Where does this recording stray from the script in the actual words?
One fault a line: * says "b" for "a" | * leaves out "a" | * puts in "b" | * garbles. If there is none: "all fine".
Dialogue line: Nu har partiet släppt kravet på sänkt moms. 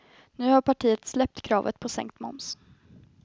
all fine